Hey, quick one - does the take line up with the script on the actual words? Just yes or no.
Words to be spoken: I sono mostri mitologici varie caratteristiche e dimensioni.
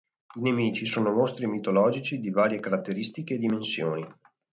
no